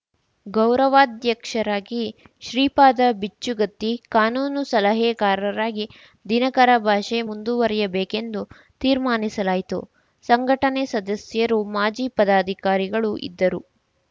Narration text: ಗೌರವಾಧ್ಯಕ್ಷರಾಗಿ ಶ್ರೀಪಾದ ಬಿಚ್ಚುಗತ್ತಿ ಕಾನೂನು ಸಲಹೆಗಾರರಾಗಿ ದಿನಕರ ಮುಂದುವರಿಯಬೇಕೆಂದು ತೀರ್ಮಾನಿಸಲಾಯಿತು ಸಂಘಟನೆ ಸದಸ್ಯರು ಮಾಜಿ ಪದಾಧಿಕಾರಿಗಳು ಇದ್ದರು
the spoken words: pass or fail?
fail